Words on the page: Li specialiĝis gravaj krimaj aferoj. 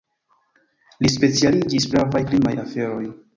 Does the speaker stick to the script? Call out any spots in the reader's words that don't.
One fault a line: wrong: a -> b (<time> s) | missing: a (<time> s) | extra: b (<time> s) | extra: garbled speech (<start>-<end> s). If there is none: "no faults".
no faults